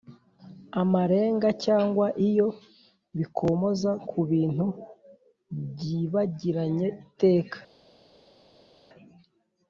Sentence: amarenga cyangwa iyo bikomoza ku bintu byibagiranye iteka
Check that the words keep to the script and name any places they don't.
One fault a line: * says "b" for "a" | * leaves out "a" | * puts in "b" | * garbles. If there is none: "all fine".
all fine